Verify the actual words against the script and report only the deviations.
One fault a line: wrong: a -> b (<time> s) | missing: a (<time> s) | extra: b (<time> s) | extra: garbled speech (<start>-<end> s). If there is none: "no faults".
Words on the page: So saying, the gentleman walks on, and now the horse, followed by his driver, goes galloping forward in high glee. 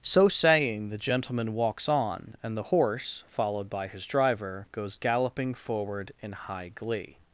missing: now (2.6 s)